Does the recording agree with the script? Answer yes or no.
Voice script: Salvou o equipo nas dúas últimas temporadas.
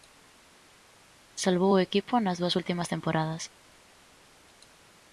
yes